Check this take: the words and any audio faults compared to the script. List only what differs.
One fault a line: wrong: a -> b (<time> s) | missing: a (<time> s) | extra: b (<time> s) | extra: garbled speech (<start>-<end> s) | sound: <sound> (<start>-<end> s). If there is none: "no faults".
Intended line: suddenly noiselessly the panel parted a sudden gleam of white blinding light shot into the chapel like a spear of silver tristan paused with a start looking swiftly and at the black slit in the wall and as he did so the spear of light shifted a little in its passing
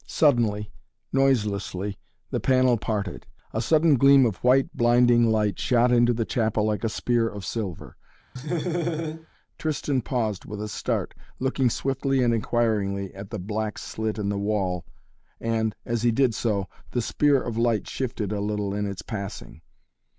sound: laugh (8.4-9.3 s)
extra: inquiringly (12.3 s)